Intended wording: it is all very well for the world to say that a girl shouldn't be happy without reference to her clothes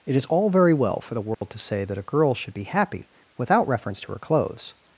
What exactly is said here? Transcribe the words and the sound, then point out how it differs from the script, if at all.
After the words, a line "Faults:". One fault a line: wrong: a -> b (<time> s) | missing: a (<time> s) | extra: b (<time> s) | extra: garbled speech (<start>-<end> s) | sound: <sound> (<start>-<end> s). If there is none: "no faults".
it is all very well for the world to say that a girl should be happy without reference to her clothes
Faults:
sound: dropout (1.3-1.4 s)
wrong: shouldn't -> should (2.3 s)